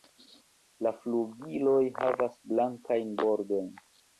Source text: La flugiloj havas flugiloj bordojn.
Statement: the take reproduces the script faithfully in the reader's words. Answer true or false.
false